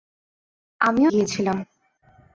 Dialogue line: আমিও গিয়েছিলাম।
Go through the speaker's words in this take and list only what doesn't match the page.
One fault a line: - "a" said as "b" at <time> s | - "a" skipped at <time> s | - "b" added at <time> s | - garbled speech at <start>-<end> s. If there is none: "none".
none